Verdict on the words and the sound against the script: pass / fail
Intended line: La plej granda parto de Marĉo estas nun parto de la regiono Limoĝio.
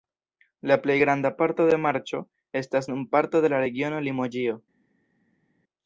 pass